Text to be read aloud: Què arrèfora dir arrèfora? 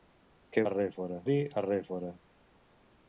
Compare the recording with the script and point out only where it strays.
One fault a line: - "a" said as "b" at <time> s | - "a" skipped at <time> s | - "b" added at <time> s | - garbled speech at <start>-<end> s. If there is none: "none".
none